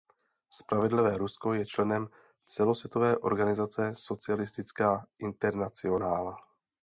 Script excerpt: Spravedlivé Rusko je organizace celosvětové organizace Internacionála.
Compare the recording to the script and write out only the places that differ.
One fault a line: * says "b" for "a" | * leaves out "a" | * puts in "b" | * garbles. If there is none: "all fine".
* says "členem" for "organizace"
* puts in "Socialistická"